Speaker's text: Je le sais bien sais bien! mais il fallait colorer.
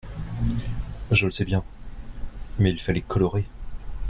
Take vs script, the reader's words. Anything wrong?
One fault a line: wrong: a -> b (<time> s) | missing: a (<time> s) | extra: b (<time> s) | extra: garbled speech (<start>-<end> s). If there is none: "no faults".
missing: sais bien (1.6 s)